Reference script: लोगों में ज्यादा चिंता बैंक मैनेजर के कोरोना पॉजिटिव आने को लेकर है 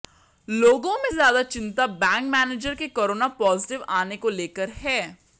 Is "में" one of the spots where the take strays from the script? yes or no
no